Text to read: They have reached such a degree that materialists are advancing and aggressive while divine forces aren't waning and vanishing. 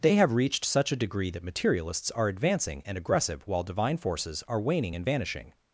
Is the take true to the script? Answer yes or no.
no